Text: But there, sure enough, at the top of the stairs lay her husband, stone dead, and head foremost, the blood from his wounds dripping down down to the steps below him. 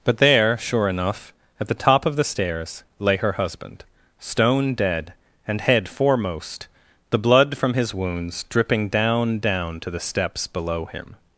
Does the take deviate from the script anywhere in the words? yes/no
no